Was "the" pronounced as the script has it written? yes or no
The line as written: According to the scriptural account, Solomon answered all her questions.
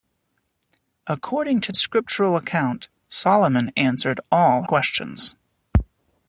no